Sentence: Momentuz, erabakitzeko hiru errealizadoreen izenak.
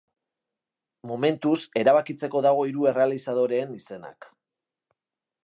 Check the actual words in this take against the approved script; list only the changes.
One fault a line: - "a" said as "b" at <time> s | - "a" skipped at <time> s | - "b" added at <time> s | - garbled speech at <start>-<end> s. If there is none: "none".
- "dago" added at 2.5 s